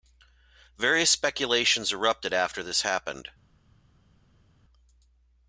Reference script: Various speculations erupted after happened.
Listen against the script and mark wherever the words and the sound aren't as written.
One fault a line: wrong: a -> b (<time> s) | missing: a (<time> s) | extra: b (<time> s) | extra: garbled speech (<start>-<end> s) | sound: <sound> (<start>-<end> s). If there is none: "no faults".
extra: this (2.6 s)